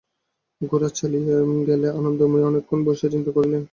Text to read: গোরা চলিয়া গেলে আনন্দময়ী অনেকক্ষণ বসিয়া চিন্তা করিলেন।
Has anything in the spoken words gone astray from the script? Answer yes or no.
no